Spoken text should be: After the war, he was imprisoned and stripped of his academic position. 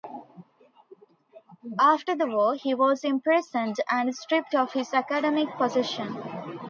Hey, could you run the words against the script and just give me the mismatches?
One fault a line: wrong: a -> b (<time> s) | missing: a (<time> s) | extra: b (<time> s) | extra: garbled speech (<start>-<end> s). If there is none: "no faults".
no faults